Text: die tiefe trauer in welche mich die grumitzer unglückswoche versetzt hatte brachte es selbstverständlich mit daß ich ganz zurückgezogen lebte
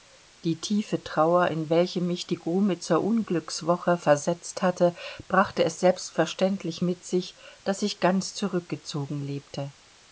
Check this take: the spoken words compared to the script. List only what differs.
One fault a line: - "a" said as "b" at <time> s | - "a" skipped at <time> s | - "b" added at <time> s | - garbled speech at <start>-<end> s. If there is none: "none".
- "sich" added at 7.0 s